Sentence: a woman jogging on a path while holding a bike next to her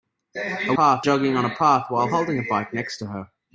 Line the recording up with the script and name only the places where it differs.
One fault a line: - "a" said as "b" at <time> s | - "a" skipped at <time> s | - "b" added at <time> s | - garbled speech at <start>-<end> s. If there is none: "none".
- "woman" said as "path" at 0.7 s